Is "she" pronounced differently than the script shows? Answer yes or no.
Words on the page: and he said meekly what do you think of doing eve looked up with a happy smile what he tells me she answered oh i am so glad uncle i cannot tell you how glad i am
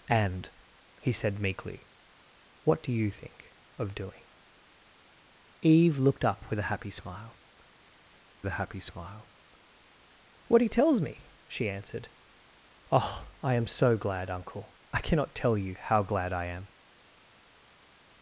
no